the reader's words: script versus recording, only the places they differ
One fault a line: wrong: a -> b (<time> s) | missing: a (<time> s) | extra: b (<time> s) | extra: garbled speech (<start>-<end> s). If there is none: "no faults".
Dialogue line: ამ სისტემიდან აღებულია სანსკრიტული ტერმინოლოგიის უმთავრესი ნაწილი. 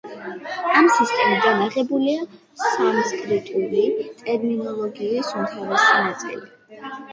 no faults